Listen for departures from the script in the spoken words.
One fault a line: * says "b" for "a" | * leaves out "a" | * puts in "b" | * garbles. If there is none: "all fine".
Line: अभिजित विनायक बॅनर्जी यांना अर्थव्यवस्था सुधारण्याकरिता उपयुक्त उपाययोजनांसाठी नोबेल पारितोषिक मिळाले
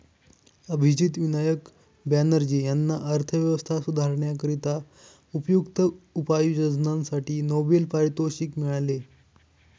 all fine